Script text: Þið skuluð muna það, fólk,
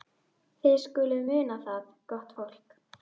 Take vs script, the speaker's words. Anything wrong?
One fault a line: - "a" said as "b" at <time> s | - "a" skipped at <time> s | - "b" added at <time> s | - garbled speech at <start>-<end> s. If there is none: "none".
- "gott" added at 2.1 s